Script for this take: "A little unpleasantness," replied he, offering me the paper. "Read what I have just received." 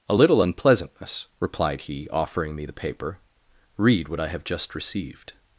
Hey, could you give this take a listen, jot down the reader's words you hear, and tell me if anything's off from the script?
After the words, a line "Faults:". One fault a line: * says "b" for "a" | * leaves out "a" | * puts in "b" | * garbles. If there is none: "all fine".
"A little unpleasantness," replied he, offering me the paper. "Read what I have just received."
Faults:
all fine